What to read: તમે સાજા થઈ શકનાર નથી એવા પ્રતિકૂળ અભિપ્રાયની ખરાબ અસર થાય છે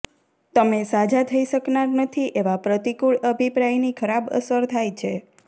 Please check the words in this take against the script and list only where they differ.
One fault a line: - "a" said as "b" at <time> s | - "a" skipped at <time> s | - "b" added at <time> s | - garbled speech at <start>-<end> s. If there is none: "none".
none